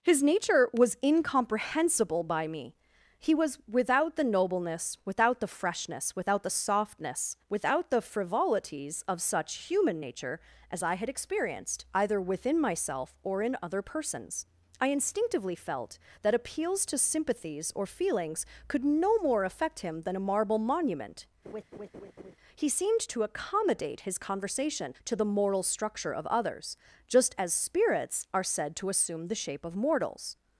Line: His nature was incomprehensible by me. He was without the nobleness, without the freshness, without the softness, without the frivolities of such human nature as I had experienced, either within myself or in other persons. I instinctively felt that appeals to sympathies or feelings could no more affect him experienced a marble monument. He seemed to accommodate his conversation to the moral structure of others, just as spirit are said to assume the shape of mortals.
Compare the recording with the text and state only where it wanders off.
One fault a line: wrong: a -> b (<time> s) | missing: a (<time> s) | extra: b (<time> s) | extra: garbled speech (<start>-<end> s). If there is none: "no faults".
wrong: experienced -> than (20.0 s)
wrong: spirit -> spirits (27.5 s)